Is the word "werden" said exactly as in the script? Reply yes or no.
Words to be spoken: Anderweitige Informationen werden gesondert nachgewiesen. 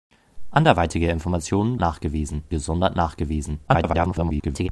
no